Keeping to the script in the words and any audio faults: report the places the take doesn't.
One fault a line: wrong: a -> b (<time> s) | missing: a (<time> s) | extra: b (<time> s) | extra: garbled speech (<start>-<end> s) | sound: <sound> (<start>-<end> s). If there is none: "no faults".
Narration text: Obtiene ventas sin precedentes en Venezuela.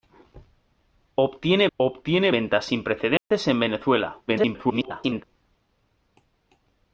extra: obtiene (1.7 s)
sound: dropout (3.2-3.3 s)
extra: garbled speech (4.3-5.2 s)